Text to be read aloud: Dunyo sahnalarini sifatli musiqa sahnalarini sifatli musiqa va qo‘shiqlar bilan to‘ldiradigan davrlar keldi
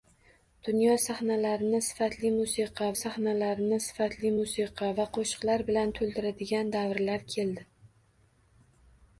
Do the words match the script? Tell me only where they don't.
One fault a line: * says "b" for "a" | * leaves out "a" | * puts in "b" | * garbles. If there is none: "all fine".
all fine